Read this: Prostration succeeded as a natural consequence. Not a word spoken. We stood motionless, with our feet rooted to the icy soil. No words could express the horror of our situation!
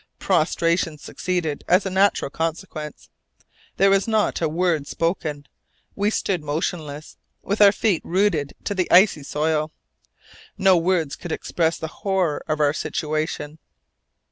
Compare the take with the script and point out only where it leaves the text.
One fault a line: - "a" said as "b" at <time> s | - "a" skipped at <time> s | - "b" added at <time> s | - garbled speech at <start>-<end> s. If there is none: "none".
- "There was" added at 3.8 s